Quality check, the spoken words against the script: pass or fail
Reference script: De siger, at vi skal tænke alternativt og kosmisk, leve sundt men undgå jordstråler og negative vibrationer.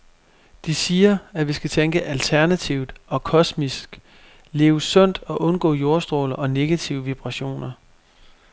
fail